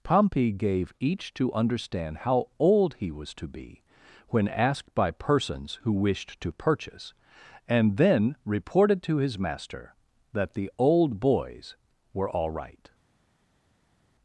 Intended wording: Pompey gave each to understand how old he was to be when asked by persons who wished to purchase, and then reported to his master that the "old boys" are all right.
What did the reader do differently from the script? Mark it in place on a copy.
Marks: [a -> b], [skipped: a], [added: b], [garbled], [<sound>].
Pompey gave each to understand how old he was to be when asked by persons who wished to purchase, and then reported to his master that the "old boys" [are -> were] all right.